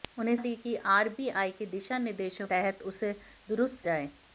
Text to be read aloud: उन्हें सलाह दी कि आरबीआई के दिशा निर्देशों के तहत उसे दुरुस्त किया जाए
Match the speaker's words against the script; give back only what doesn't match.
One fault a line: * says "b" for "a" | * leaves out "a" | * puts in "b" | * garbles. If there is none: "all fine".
* leaves out "सलाह"
* leaves out "के"
* leaves out "किया"